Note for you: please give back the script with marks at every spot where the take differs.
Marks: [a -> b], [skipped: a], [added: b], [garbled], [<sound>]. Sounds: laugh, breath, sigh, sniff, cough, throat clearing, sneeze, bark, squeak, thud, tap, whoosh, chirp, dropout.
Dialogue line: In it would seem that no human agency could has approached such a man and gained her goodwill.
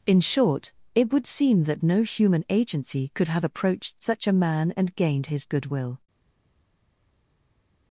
In [added: short] it would seem that no human agency could [has -> have] approached such a man and gained [her -> his] goodwill.